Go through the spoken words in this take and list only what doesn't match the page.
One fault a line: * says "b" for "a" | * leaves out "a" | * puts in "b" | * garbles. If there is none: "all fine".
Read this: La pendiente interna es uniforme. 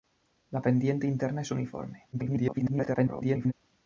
* garbles